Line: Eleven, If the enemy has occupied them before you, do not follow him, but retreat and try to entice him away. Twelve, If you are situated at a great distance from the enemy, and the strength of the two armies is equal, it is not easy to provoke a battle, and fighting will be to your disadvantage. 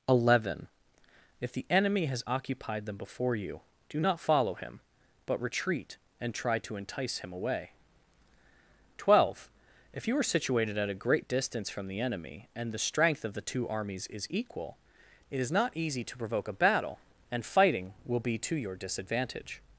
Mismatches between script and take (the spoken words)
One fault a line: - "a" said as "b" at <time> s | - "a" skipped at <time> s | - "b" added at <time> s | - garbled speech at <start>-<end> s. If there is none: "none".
none